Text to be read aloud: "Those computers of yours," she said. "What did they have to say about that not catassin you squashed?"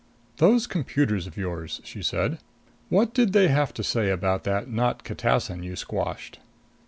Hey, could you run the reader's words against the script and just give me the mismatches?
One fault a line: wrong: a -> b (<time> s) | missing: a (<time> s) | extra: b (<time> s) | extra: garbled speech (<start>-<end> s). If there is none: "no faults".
no faults